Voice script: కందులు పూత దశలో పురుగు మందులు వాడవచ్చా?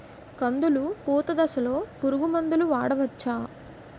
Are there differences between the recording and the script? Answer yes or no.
no